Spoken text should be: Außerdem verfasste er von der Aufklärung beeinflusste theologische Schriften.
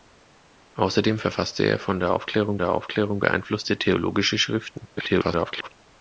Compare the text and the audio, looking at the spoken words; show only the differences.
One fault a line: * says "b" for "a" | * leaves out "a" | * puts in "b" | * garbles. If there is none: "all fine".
* puts in "der Aufklärung"
* garbles